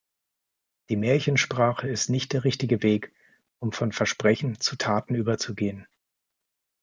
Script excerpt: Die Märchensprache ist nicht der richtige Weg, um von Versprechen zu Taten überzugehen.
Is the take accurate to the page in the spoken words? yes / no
yes